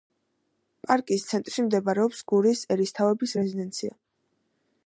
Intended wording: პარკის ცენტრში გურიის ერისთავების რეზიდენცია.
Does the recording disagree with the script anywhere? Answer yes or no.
yes